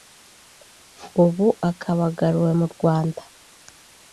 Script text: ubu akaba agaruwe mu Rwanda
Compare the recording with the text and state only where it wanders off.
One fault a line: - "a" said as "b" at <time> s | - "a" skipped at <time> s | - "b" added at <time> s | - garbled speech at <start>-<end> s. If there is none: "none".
none